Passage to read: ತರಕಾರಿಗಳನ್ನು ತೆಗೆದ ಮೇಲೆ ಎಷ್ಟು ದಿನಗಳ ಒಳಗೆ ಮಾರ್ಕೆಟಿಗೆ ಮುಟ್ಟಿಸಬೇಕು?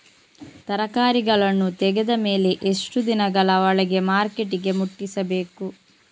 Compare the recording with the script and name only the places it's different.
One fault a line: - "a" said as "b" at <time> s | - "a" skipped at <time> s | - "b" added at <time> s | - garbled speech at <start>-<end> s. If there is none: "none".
none